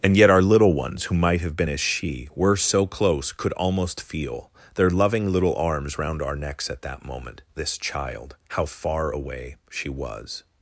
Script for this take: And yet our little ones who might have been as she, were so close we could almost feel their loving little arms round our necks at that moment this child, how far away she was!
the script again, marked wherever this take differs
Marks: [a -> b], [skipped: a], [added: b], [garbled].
And yet our little ones who might have been as she, were so close [skipped: we] could almost feel their loving little arms round our necks at that moment this child, how far away she was!